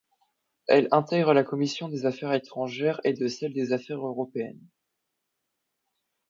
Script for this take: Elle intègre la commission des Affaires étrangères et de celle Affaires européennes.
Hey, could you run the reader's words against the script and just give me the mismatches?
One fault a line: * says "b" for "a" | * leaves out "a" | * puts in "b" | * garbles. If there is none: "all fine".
* puts in "des"